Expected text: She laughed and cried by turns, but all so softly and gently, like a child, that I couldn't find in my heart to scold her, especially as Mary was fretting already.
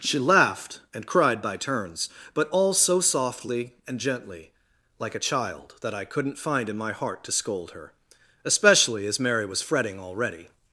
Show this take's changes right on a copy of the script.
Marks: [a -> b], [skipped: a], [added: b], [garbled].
She laughed and cried by turns, but all so softly and gently, like a child, that I couldn't find in my heart to scold her, especially as Mary was fretting already.